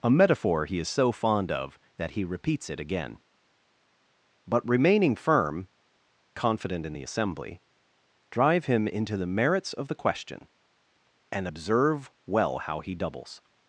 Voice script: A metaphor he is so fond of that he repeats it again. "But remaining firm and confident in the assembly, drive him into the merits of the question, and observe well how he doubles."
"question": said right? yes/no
yes